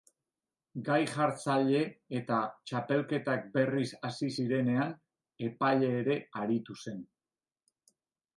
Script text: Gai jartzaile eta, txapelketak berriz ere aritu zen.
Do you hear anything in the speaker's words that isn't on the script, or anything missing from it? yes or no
yes